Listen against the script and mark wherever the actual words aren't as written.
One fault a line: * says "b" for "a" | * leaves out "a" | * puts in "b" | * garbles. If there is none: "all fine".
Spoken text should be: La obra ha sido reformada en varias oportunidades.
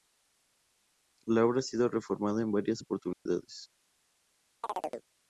all fine